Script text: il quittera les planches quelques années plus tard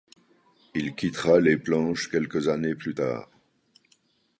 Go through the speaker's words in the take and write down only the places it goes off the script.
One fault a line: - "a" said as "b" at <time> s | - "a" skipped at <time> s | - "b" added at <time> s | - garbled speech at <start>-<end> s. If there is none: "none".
none